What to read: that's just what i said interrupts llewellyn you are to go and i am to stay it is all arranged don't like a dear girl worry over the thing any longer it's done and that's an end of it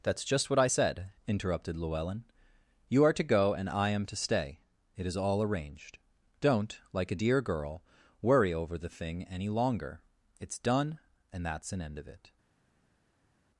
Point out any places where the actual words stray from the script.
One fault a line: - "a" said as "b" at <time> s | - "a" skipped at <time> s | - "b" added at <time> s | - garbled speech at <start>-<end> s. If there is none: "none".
- "interrupts" said as "interrupted" at 1.3 s